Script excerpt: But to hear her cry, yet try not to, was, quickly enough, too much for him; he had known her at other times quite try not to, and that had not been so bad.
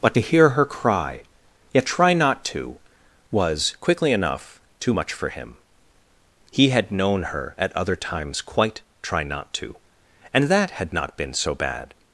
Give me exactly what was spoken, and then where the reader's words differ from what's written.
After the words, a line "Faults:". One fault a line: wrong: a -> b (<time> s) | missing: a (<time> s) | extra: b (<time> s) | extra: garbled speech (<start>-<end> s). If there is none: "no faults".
But to hear her cry, yet try not to, was, quickly enough, too much for him; he had known her at other times quite try not to, and that had not been so bad.
Faults:
no faults